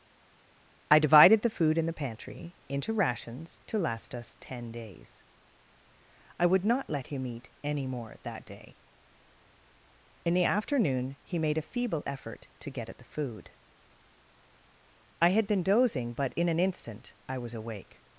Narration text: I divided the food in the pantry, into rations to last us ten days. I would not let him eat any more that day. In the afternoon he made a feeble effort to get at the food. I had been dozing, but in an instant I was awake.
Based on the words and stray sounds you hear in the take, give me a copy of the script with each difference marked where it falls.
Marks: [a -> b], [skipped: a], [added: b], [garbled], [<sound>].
I divided the food in the pantry, into rations to last us ten days. I would not let him eat any more that day. In the afternoon he made a feeble effort to get at the food. I had been dozing, but in an instant I was awake.